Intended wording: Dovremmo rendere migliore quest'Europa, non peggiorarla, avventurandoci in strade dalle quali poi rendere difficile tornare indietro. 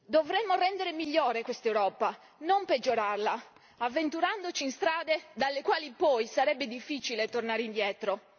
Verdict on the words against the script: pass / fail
fail